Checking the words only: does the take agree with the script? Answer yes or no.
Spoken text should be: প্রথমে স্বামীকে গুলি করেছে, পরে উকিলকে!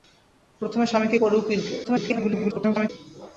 no